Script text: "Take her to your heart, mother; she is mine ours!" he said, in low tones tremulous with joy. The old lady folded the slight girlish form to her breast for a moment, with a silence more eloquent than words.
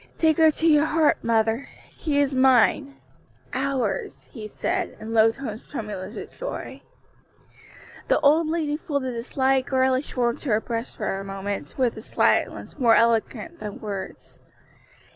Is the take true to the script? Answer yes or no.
yes